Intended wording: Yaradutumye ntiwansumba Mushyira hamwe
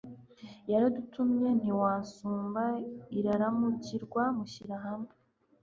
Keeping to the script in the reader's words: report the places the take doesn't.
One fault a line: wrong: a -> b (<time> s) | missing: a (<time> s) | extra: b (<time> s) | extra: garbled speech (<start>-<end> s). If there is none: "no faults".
extra: Iraramukirwa (3.2 s)